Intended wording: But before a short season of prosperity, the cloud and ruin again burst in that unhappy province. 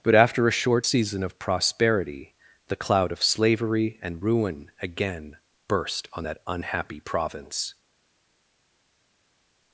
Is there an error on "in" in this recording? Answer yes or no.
yes